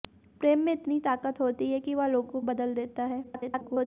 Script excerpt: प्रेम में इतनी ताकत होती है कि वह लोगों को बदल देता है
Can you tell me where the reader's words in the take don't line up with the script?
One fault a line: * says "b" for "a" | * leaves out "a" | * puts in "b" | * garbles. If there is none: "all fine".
* leaves out "को"
* garbles